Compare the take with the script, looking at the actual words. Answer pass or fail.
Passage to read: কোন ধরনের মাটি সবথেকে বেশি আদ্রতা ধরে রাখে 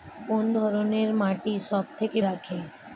fail